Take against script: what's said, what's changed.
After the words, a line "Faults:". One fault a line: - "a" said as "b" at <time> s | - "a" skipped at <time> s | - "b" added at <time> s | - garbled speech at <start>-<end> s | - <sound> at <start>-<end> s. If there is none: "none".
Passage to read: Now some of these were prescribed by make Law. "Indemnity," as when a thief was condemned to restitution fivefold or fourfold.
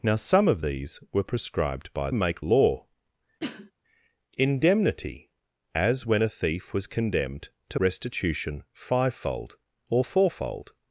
Now some of these were prescribed by make Law. "Indemnity," as when a thief was condemned to restitution fivefold or fourfold.
Faults:
- cough at 3.4-3.7 s